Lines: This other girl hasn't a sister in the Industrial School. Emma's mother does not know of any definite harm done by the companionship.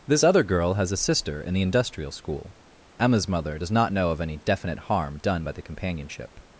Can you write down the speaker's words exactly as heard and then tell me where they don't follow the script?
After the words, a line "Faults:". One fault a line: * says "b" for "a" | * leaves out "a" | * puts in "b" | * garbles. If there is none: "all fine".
This other girl has a sister in the Industrial School. Emma's mother does not know of any definite harm done by the companionship.
Faults:
* says "has" for "hasn't"